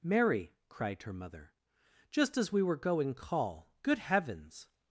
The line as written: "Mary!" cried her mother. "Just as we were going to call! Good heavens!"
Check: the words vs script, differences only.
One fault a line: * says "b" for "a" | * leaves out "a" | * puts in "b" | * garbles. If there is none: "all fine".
* leaves out "to"